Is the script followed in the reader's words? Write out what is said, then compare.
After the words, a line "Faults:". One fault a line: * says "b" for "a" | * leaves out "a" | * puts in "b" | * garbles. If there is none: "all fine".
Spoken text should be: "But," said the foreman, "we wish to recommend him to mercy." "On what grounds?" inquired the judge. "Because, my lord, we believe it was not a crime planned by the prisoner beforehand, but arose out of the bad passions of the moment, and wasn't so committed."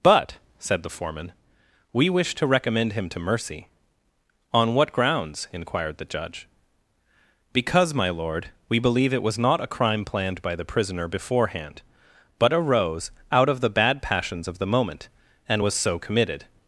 "But," said the foreman, "we wish to recommend him to mercy." "On what grounds?" inquired the judge. "Because, my lord, we believe it was not a crime planned by the prisoner beforehand, but arose out of the bad passions of the moment, and was so committed."
Faults:
* says "was" for "wasn't"